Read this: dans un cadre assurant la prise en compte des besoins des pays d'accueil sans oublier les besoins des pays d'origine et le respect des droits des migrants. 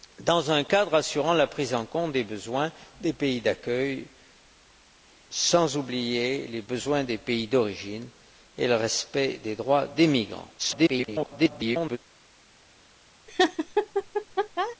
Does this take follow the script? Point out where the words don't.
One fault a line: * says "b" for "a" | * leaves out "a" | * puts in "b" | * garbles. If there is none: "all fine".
* garbles